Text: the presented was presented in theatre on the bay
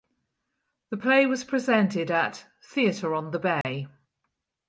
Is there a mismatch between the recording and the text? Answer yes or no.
yes